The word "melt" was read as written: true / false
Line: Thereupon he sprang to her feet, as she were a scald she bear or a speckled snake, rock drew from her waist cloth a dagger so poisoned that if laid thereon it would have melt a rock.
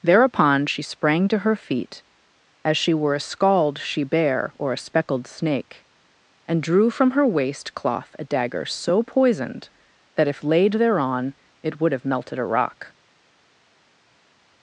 false